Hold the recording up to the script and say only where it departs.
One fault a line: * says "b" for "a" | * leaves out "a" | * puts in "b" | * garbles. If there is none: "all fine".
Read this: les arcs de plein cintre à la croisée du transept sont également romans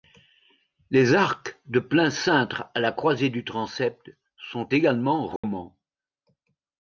all fine